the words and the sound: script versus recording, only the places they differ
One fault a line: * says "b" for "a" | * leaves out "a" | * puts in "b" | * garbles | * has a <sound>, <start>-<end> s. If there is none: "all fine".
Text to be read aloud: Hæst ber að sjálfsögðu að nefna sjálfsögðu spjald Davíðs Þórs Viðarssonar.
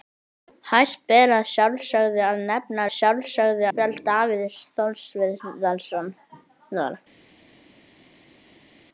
all fine